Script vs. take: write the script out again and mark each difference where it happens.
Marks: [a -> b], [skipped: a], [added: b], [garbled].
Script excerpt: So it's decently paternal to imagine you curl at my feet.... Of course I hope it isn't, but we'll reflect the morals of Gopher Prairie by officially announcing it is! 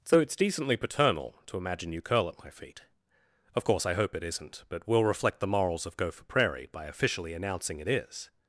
So it's decently paternal to imagine you curl at my feet.... Of course I hope it isn't, but we'll reflect the morals of Gopher Prairie by officially announcing it is!